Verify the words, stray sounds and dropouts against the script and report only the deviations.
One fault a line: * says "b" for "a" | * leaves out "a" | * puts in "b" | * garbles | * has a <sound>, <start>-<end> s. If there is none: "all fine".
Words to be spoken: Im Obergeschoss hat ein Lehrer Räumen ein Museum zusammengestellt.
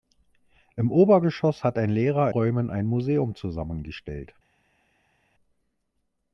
all fine